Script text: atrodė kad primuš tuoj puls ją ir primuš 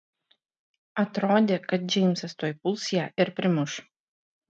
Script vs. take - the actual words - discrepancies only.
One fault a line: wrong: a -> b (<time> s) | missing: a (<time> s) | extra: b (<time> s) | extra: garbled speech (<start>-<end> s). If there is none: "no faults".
wrong: primuš -> džeimsas (1.9 s)